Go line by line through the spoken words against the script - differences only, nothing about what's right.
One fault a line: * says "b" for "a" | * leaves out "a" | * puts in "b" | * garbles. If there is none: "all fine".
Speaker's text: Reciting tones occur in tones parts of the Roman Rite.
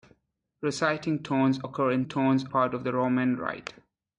all fine